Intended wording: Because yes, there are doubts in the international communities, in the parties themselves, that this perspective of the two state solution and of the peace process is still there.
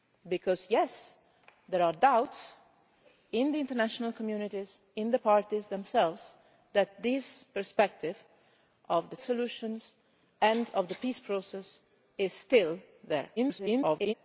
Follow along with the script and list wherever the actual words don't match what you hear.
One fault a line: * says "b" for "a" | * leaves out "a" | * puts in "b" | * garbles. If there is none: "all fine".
* leaves out "two state"
* garbles